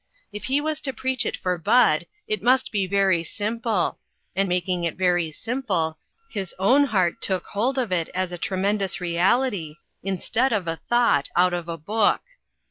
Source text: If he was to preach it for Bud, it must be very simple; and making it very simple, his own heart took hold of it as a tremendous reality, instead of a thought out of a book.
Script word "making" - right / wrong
right